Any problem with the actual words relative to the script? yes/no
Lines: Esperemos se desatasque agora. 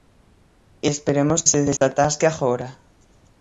no